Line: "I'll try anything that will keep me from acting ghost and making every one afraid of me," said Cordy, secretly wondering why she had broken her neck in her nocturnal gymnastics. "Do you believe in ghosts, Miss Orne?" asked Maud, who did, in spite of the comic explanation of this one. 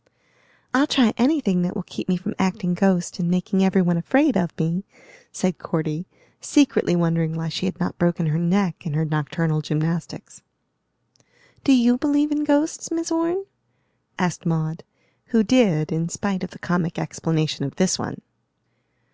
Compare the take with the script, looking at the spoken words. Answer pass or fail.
fail